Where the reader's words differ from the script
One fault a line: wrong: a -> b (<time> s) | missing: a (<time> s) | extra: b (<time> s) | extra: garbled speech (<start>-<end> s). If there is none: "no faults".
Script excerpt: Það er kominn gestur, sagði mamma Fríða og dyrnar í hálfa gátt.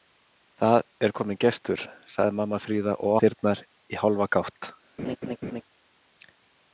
no faults